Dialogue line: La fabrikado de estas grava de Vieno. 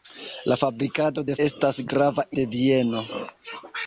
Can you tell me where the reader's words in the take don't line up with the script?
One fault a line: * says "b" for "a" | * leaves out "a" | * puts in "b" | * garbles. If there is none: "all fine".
all fine